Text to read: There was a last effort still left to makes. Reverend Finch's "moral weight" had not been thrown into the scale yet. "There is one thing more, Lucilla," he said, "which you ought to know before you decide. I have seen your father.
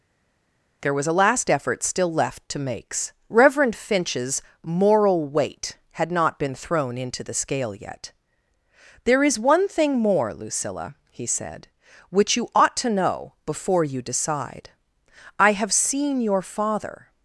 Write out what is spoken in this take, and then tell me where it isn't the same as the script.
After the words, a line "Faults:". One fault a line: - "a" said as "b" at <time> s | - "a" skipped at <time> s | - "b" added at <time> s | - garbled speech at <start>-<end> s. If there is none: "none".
There was a last effort still left to makes. Reverend Finch's "moral weight" had not been thrown into the scale yet. "There is one thing more, Lucilla," he said, "which you ought to know before you decide. I have seen your father.
Faults:
none